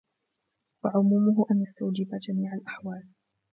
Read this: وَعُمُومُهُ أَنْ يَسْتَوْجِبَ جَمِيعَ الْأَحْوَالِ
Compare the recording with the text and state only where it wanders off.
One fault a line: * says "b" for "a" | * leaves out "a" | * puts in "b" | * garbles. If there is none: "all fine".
all fine